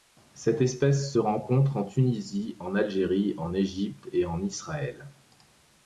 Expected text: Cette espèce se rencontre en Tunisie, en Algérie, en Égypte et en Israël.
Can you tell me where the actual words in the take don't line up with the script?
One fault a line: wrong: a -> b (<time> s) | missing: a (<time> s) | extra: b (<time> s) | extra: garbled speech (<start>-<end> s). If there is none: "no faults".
no faults